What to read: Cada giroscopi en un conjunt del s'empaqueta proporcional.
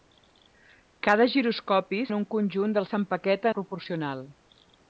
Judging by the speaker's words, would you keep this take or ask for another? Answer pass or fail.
pass